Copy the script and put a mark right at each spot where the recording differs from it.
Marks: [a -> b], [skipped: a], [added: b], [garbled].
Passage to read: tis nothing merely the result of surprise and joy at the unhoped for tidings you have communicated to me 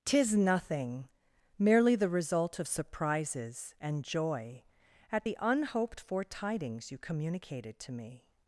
tis nothing merely the result of [surprise -> surprises] and joy at the unhoped for tidings you [skipped: have] communicated to me